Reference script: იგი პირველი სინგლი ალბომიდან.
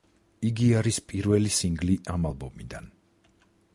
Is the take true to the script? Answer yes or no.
no